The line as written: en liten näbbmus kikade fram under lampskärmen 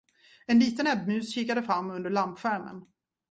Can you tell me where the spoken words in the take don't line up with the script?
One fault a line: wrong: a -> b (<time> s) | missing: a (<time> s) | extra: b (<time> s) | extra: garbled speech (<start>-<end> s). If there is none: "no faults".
no faults